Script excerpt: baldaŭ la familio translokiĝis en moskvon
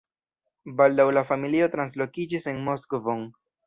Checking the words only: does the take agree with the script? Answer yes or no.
yes